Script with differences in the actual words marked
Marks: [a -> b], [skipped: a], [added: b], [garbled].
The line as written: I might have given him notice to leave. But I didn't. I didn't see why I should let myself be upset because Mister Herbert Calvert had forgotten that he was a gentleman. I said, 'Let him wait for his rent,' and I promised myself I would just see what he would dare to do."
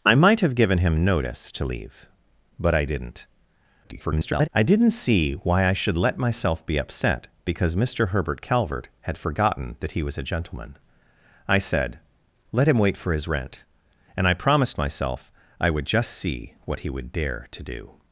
I might have given him notice to leave. But I didn't. [garbled] I didn't see why I should let myself be upset because Mister Herbert Calvert had forgotten that he was a gentleman. I said, 'Let him wait for his rent,' and I promised myself I would just see what he would dare to do."